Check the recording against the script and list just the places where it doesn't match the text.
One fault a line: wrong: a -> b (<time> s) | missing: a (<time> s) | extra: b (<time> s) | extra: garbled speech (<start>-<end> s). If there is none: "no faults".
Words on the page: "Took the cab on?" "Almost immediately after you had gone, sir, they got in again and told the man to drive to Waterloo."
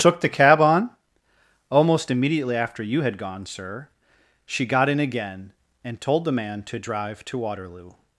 wrong: they -> she (4.5 s)